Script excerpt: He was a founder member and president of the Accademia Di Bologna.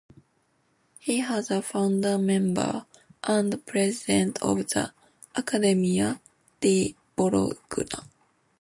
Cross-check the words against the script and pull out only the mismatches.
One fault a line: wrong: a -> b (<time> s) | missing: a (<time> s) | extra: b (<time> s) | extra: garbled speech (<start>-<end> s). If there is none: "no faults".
no faults